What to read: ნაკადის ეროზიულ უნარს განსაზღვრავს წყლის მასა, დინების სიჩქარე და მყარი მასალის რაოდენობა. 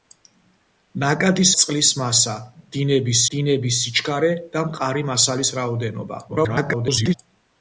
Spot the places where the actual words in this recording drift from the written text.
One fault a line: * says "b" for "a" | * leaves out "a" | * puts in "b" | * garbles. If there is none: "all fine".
* leaves out "ეროზიულ უნარს განსაზღვრავს"
* puts in "დინების"
* garbles